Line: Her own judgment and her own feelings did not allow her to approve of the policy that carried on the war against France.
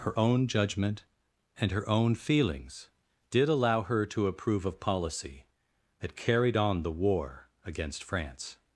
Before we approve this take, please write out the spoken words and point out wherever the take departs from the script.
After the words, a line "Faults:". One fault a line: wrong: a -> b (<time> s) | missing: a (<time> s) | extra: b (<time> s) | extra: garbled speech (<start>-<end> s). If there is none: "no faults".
Her own judgment and her own feelings did allow her to approve of policy that carried on the war against France.
Faults:
missing: not (3.5 s)
missing: the (4.8 s)